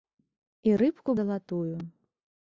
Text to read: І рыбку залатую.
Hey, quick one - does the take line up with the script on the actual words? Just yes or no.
yes